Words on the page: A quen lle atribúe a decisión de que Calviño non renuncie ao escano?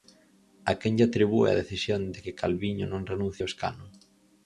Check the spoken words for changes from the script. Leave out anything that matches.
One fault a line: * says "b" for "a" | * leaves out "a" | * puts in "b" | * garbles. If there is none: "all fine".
all fine